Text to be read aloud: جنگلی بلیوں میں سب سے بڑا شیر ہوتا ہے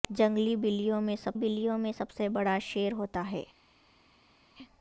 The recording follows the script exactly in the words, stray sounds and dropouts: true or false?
false